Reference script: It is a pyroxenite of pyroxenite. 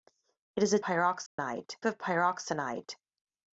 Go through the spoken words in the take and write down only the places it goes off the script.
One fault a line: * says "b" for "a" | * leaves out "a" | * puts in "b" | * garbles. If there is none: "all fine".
all fine